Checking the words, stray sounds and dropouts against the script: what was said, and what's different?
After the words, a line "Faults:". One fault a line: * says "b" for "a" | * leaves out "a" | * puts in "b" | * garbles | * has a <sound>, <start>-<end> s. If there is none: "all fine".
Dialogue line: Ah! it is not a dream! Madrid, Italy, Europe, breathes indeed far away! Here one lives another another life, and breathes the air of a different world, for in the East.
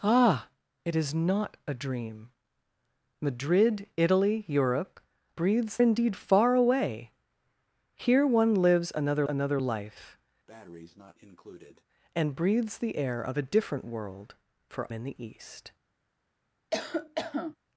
Ah! it is not a dream! Madrid, Italy, Europe, breathes indeed far away! Here one lives another another life, and breathes the air of a different world, for in the East.
Faults:
* has a breath, 10.5-11.8 s
* has a cough, 16.7-17.6 s